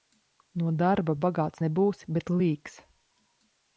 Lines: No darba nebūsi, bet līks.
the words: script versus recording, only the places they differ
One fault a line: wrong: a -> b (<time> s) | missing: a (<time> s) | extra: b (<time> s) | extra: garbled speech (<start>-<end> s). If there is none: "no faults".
extra: bagāts (1.2 s)